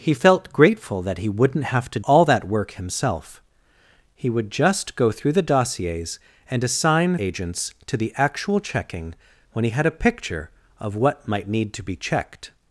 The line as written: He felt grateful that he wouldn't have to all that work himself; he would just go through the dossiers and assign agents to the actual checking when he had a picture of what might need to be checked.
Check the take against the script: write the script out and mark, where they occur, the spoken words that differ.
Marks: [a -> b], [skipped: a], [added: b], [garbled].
He felt grateful that he wouldn't have to all that work himself; he would just go through the dossiers and assign agents to the actual checking when he had a picture of what might need to be checked.